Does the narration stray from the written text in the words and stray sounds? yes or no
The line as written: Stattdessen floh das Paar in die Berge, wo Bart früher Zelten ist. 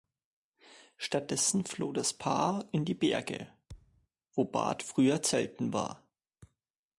yes